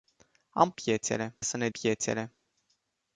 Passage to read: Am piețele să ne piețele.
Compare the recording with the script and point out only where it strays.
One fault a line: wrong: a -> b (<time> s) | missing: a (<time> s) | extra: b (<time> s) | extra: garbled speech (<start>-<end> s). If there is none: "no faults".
no faults